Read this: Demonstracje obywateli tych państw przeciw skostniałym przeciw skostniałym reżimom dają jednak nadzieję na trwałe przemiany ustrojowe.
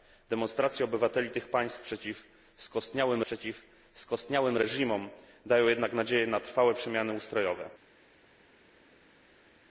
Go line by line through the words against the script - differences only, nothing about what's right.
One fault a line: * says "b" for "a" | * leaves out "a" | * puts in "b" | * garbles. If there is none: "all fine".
all fine